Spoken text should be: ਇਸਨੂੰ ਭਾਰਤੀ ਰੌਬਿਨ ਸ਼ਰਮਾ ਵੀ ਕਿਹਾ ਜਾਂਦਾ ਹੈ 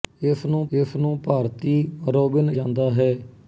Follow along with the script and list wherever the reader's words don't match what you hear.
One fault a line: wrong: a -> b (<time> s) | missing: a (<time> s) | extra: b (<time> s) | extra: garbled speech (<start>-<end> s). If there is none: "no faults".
extra: ਇਸਨੂੰ (0.7 s)
missing: ਸ਼ਰਮਾ ਵੀ ਕਿਹਾ (2.5 s)